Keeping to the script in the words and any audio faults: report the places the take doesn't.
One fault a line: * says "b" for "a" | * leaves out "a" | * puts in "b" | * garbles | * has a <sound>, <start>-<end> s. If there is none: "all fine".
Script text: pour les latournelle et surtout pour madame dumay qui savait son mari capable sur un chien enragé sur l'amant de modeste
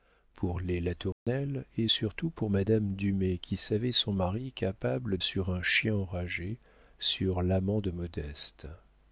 * has a dropout, 1.1-1.3 s